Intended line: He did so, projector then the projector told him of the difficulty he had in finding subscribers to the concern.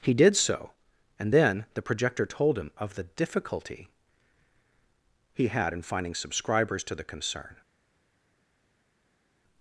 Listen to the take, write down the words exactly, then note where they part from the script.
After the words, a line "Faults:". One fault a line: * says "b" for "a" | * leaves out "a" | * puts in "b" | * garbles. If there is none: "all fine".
He did so, and then the projector told him of the difficulty he had in finding subscribers to the concern.
Faults:
* says "and" for "projector"